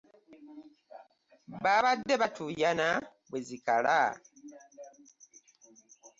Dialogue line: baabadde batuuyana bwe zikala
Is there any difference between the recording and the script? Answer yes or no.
no